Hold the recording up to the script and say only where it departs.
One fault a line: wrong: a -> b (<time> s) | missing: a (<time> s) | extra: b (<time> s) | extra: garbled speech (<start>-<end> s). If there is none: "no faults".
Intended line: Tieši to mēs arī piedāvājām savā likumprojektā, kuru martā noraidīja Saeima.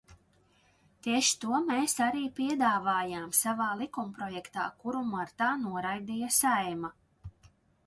no faults